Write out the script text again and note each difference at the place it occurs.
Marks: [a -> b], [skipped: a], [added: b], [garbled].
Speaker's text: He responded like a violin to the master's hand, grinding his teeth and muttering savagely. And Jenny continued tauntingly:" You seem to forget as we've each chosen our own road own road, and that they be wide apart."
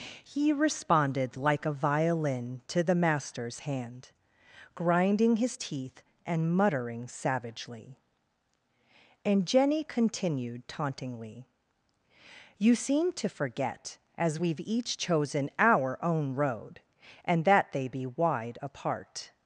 He responded like a violin to the master's hand, grinding his teeth and muttering savagely. And Jenny continued tauntingly:" You seem to forget as we've each chosen our own road [skipped: own road,] and that they be wide apart."